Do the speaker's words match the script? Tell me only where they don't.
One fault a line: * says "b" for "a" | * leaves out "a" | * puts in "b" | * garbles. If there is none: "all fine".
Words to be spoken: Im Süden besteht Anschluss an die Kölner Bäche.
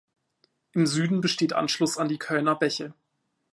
all fine